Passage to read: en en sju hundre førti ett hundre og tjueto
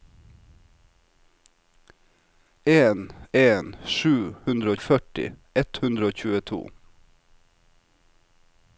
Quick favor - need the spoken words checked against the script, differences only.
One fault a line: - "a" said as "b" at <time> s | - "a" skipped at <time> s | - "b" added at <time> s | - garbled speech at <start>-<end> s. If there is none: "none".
none